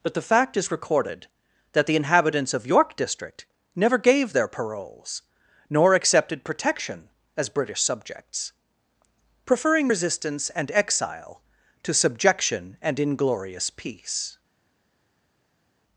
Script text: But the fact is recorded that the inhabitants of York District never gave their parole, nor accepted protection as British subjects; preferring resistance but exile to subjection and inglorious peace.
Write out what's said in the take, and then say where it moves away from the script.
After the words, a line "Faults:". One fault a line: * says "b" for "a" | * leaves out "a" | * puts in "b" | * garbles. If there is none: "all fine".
But the fact is recorded that the inhabitants of York District never gave their paroles, nor accepted protection as British subjects; preferring resistance and exile to subjection and inglorious peace.
Faults:
* says "paroles" for "parole"
* says "and" for "but"